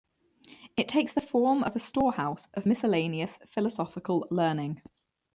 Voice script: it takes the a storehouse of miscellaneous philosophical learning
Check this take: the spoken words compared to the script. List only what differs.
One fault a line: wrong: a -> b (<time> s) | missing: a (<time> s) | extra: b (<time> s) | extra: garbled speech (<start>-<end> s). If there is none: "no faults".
extra: form of (1.2 s)